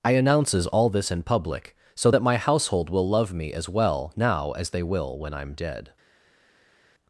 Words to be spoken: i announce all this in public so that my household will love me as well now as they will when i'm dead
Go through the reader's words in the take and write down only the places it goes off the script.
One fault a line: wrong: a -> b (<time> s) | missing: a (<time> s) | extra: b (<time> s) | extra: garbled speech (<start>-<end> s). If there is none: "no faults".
wrong: announce -> announces (0.1 s)